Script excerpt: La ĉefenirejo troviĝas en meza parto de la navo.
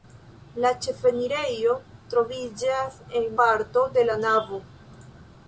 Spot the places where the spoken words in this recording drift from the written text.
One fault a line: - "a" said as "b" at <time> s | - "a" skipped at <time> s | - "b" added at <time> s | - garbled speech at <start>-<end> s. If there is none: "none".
- "meza" skipped at 3.3 s